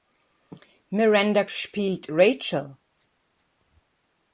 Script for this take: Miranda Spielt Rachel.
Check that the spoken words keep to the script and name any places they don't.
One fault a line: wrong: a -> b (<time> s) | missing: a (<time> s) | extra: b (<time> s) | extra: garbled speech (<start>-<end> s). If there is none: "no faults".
no faults